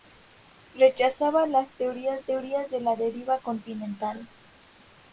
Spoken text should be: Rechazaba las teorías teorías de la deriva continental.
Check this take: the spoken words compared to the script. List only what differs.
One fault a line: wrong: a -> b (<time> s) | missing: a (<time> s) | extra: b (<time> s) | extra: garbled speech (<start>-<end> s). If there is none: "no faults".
no faults